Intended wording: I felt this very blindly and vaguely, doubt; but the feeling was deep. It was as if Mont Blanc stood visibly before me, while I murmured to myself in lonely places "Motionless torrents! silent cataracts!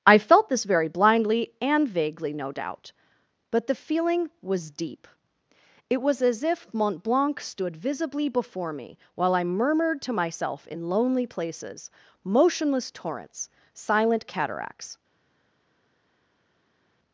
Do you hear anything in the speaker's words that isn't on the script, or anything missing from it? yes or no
yes